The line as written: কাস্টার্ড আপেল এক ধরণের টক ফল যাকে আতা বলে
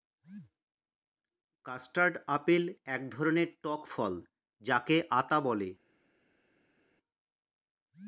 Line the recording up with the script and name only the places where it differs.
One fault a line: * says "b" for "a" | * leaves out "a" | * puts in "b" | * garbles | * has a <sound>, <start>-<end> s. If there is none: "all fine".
all fine